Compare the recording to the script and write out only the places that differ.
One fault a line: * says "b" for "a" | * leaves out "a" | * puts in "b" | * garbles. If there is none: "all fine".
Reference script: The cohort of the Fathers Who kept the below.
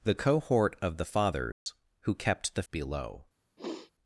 all fine